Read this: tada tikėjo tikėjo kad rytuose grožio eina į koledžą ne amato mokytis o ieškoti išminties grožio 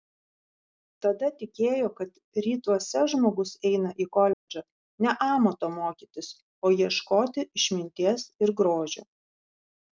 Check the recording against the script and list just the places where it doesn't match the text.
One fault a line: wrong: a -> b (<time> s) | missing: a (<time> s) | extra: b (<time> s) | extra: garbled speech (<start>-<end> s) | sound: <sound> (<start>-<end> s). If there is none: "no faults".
missing: tikėjo (1.9 s)
wrong: grožio -> žmogus (3.1 s)
sound: dropout (4.3-4.5 s)
extra: ir (8.5 s)